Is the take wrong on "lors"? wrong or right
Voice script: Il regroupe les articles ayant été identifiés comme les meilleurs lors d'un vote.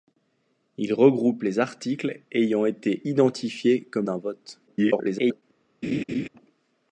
wrong